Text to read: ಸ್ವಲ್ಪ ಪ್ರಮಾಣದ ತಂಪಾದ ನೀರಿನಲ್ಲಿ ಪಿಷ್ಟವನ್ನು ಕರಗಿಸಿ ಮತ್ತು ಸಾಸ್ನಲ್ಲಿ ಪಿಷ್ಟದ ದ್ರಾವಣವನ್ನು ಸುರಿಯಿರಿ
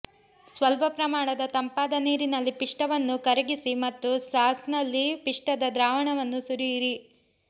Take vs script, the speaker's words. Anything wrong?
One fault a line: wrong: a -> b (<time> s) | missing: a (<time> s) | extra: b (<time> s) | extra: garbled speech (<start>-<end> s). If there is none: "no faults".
no faults